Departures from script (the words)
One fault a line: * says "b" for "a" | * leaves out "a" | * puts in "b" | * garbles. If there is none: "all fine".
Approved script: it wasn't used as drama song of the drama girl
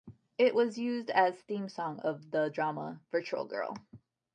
* says "was" for "wasn't"
* says "theme" for "drama"
* puts in "virtual"